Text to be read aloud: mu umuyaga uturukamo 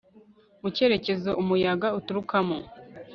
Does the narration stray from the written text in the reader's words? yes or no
yes